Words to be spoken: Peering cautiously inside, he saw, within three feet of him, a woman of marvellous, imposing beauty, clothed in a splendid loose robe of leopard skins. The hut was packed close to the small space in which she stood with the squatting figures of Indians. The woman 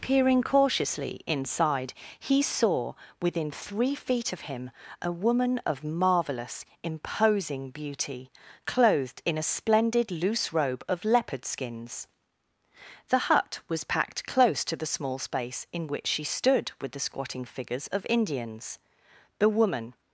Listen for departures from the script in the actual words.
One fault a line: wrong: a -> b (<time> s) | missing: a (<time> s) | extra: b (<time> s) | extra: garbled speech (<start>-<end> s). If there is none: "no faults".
no faults